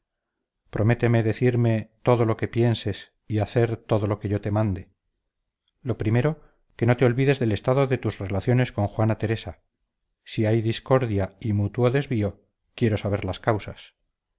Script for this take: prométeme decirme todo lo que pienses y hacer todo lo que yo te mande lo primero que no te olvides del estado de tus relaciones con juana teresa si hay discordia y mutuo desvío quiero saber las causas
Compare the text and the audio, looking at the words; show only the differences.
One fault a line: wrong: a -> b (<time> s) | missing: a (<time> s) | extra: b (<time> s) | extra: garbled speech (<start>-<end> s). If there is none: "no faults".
no faults